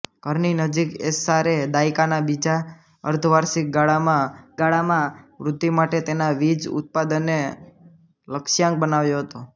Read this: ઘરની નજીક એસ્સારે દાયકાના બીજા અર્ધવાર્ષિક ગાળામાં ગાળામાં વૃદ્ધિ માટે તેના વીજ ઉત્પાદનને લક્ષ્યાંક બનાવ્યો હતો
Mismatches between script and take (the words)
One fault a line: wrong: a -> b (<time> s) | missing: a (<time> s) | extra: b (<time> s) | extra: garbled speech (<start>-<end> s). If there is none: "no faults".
no faults